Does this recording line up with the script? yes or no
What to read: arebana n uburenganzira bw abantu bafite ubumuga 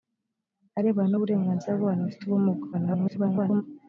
no